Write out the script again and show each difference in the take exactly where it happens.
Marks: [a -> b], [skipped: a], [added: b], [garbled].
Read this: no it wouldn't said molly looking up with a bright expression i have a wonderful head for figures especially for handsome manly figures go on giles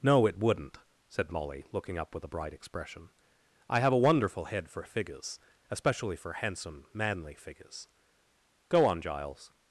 no it wouldn't said molly looking up with a bright expression i have a wonderful head for figures especially for handsome manly figures go on giles